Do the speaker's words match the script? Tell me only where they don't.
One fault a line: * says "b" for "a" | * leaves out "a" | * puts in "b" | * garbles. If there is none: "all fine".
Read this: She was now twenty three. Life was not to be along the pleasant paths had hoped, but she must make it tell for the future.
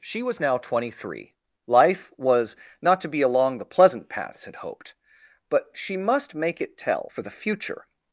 all fine